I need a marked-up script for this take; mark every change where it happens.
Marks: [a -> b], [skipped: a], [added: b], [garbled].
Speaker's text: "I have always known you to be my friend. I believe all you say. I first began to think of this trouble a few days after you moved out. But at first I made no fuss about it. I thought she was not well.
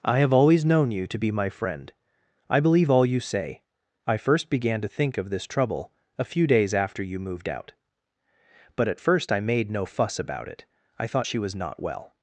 "I have always known you to be my friend. I believe all you say. I first began to think of this trouble a few days after you moved out. But at first I made no fuss about it. I thought she was not well.